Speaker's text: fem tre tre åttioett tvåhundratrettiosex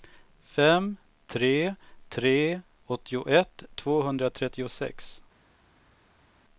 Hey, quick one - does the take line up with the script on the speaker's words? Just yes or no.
yes